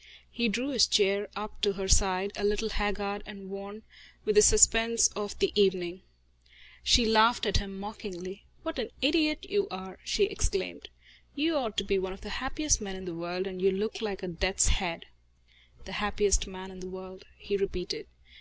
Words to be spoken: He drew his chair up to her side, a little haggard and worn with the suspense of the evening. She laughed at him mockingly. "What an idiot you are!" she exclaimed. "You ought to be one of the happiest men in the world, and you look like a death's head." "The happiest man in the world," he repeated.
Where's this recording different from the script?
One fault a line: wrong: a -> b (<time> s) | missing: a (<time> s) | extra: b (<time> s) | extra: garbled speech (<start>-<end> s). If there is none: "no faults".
no faults